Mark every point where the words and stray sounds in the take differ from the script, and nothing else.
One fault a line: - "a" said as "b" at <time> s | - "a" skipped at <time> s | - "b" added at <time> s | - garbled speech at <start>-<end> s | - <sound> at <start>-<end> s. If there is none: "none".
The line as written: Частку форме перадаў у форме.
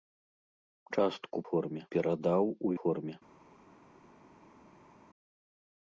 none